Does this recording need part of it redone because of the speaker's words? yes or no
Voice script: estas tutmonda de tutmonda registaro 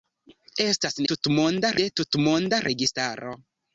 no